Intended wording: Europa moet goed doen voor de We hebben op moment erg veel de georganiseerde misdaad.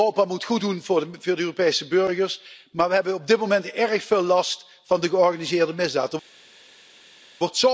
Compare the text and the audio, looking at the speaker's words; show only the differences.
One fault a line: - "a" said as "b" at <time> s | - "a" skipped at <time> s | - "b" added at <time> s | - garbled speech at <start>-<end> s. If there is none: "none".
- "Europese burgers maar" added at 1.4 s
- "dit" added at 3.3 s
- "last van" added at 4.2 s